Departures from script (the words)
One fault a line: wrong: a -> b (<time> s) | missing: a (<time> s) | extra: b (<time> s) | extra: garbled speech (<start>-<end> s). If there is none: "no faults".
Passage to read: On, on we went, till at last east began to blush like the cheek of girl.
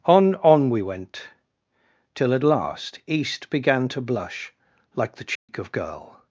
no faults